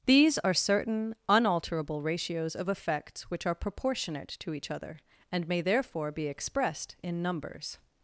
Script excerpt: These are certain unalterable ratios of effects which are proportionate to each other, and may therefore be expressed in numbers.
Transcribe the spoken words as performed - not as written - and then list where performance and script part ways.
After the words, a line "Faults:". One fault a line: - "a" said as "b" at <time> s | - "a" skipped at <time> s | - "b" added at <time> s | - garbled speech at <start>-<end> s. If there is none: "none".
These are certain unalterable ratios of effects which are proportionate to each other, and may therefore be expressed in numbers.
Faults:
none